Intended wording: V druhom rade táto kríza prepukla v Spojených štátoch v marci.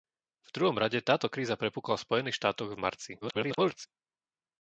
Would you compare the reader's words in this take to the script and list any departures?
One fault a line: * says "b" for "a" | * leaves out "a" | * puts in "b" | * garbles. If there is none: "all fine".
* garbles